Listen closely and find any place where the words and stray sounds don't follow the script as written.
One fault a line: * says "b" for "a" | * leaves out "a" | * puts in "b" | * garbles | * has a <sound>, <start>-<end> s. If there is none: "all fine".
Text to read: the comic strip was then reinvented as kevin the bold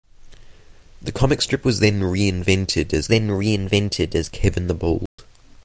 * puts in "then reinvented as"
* has a dropout, 5.1-5.2 s